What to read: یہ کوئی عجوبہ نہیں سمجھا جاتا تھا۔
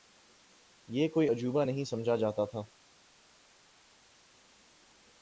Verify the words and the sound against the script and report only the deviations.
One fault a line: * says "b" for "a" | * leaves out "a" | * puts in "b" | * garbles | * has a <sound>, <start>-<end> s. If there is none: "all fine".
all fine